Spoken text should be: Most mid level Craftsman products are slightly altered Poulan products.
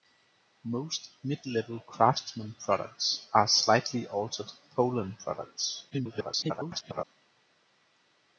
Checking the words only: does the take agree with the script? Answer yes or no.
no